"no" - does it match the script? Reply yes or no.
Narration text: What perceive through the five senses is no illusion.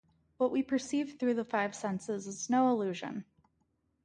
yes